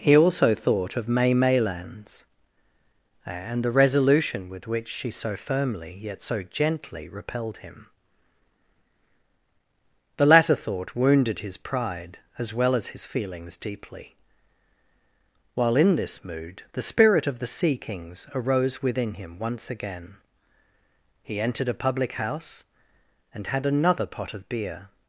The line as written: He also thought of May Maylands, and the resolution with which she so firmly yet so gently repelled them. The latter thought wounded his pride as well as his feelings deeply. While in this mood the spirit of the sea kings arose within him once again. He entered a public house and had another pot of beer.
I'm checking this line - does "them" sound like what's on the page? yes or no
no